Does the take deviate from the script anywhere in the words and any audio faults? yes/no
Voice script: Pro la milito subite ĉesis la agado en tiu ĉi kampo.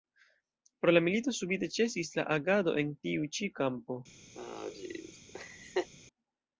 yes